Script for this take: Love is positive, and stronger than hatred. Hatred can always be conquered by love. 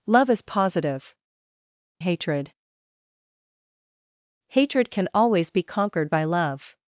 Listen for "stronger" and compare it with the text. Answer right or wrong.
wrong